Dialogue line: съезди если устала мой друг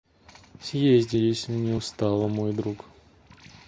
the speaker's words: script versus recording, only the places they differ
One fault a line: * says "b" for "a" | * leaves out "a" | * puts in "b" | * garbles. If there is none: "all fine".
* puts in "не"